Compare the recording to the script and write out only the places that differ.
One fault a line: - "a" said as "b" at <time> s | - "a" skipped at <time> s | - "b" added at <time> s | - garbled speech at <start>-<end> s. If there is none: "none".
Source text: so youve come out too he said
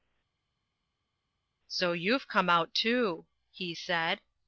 none